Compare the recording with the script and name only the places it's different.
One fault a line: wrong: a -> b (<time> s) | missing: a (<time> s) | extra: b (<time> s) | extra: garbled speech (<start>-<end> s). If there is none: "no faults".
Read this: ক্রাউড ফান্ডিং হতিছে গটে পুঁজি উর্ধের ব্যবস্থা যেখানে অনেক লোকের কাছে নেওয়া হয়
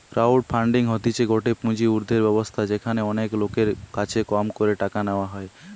extra: কম করে টাকা (4.3 s)